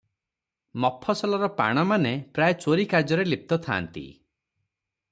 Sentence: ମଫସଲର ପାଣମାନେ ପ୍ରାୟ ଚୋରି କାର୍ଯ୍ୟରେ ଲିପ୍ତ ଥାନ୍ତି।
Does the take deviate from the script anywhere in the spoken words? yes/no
no